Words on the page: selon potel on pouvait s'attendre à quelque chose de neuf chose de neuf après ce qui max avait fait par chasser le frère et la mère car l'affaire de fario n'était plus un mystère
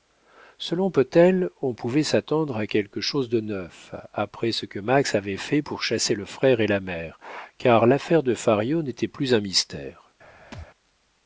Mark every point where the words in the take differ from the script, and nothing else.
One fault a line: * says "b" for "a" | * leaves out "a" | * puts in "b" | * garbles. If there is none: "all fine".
* leaves out "chose de neuf"
* says "que" for "qui"
* says "pour" for "par"